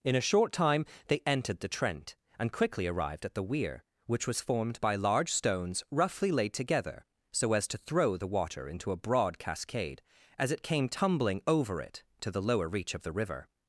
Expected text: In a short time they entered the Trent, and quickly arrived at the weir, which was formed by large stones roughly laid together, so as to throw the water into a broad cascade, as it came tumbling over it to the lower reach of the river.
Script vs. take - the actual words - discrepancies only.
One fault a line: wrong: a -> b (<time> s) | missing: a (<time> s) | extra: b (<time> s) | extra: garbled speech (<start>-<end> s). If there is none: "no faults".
no faults